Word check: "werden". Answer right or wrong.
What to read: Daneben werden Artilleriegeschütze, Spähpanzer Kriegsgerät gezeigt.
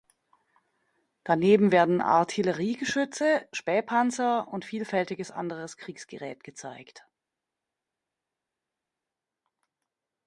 right